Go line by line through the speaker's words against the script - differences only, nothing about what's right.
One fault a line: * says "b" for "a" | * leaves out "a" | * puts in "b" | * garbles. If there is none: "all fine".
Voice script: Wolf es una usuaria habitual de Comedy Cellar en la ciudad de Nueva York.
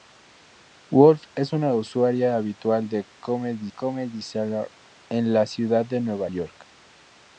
* puts in "Comedy"